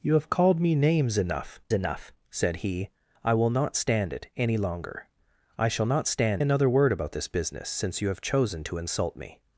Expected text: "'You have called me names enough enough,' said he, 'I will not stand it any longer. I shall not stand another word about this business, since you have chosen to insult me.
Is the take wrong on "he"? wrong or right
right